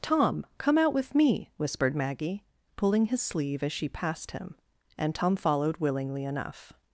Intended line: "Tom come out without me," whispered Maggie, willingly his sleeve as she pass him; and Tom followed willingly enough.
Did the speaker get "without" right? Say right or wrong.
wrong